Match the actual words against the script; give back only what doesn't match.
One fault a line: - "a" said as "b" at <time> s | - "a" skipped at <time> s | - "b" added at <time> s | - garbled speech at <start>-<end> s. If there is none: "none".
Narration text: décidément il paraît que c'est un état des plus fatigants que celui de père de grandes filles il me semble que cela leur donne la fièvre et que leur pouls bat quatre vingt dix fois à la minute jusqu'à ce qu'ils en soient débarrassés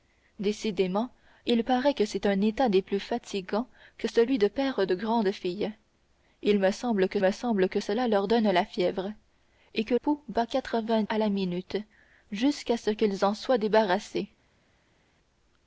- "me semble que" added at 7.2 s
- "leur" skipped at 9.9 s
- "dix fois" skipped at 11.0 s